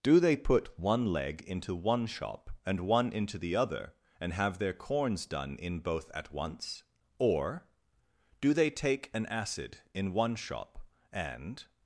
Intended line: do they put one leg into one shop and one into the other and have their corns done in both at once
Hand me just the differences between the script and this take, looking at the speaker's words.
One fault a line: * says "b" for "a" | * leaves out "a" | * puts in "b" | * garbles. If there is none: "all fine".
* puts in "or do they take an acid in one shop and"